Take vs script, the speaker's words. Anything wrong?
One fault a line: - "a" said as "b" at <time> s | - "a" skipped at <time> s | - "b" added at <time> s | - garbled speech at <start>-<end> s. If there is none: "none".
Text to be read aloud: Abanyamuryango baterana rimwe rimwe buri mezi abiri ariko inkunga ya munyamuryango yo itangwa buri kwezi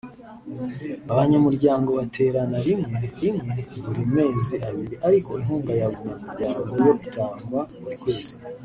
none